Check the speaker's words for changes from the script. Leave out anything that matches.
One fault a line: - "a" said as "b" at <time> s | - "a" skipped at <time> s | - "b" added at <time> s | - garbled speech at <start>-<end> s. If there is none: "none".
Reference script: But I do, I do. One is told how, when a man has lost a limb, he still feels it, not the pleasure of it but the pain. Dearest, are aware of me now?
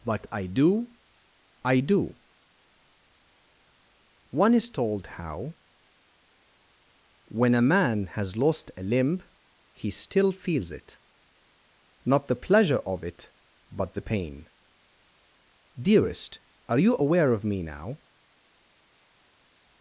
- "you" added at 16.8 s